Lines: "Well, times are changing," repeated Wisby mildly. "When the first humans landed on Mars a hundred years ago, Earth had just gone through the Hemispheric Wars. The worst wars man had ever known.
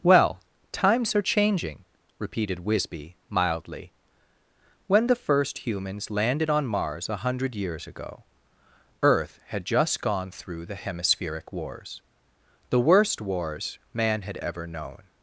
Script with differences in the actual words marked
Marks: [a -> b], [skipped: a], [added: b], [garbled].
"Well, times are changing," repeated Wisby mildly. "When the first humans landed on Mars a hundred years ago, Earth had just gone through the Hemispheric Wars. The worst wars man had ever known.